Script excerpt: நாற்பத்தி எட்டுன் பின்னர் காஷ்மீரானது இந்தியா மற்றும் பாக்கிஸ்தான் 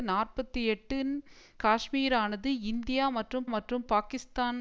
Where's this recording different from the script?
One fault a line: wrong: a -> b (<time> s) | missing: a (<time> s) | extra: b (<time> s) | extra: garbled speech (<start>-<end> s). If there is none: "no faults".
missing: பின்னர் (1.1 s)
extra: மற்றும் (3.5 s)